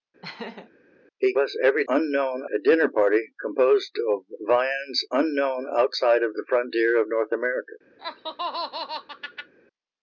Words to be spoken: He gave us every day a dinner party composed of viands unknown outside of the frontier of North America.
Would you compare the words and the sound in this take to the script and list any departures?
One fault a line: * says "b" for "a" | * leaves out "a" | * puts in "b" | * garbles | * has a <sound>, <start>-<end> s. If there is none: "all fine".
* has a laugh, 0.2-0.7 s
* leaves out "gave"
* says "unknown" for "day"
* has a laugh, 8.0-9.5 s